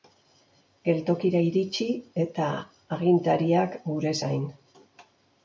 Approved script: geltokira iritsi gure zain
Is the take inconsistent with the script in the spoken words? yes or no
yes